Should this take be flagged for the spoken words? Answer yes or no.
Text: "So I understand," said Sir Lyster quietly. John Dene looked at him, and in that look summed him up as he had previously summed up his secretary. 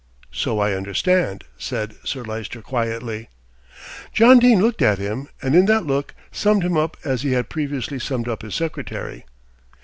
no